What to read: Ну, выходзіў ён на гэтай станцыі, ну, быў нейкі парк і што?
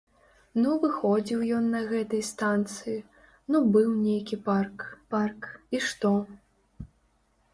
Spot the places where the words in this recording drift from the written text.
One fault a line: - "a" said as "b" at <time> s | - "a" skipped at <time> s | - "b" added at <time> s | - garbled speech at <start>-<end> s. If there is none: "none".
- "парк" added at 5.1 s